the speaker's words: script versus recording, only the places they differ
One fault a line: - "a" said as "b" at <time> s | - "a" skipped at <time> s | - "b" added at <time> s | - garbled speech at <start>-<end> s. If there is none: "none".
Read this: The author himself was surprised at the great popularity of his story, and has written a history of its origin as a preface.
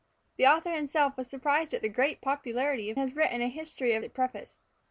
- "his story and" skipped at 3.0 s
- "its origin as" skipped at 4.0 s